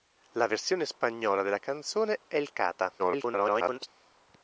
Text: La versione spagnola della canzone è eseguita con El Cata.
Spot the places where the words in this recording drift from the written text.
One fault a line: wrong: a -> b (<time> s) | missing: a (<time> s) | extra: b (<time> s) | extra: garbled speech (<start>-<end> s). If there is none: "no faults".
missing: è eseguita con (2.2 s)
extra: garbled speech (3.0-3.9 s)